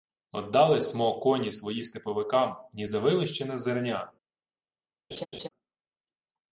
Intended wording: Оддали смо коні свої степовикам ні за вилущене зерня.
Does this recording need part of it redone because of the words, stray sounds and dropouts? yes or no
yes